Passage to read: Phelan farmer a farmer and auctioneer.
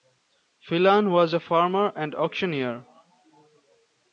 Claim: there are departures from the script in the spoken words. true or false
true